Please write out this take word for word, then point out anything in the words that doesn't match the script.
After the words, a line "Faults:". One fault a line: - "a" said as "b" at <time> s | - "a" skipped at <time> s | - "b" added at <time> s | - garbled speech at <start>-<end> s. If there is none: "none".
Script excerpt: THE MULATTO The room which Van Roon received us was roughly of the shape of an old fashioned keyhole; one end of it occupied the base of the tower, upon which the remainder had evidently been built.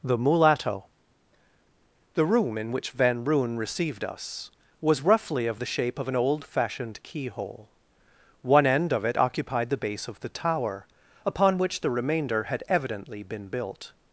THE MULATTO The room in which Van Roon received us was roughly of the shape of an old fashioned keyhole; one end of it occupied the base of the tower, upon which the remainder had evidently been built.
Faults:
- "in" added at 2.6 s